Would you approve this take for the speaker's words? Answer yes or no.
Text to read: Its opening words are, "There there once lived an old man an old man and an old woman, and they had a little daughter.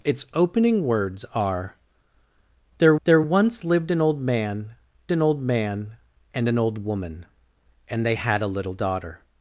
yes